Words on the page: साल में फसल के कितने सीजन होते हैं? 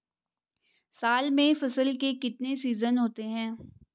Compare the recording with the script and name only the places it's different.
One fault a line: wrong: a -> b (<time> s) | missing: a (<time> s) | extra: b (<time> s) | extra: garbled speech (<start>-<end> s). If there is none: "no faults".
no faults